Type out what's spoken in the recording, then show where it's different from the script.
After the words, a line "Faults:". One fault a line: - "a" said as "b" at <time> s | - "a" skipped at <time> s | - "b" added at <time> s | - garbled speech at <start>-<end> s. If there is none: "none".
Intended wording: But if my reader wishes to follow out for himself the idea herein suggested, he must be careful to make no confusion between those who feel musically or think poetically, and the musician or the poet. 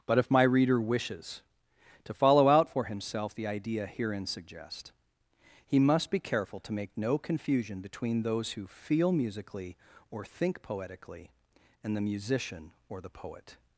But if my reader wishes to follow out for himself the idea herein suggest, he must be careful to make no confusion between those who feel musically or think poetically, and the musician or the poet.
Faults:
- "suggested" said as "suggest" at 4.2 s